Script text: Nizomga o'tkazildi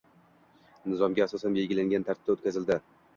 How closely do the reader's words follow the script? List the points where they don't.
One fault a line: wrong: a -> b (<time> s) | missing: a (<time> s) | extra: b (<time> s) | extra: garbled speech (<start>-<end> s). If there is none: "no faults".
extra: asosan belgilangan tartibda (1.2 s)